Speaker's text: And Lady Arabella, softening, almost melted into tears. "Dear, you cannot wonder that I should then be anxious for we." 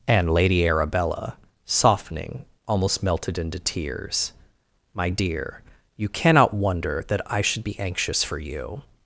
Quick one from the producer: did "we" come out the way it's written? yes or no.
no